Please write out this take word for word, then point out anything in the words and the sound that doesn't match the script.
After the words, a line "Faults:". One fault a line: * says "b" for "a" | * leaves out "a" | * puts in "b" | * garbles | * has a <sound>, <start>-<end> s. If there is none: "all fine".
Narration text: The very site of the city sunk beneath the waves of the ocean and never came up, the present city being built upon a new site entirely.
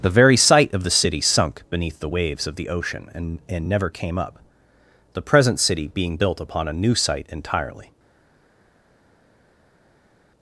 The very site of the city sunk beneath the waves of the ocean and and never came up, the present city being built upon a new site entirely.
Faults:
* puts in "and"